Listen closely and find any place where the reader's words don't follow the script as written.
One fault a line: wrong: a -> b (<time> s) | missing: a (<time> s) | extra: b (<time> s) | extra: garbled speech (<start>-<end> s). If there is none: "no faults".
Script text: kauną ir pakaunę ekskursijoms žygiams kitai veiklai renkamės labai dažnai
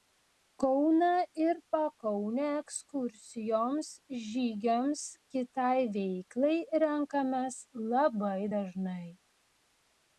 no faults